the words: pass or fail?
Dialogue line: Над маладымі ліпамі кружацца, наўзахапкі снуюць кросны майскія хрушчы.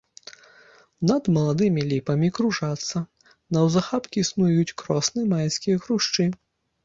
pass